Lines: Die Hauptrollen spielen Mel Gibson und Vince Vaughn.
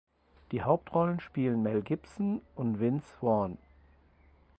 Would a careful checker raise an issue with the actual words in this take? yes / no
no